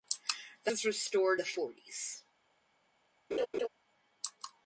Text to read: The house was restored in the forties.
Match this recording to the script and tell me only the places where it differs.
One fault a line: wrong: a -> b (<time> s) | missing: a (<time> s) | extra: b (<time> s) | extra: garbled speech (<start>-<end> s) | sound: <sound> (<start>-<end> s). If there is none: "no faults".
missing: house (0.7 s)
missing: in (1.4 s)
sound: laugh (3.3-3.7 s)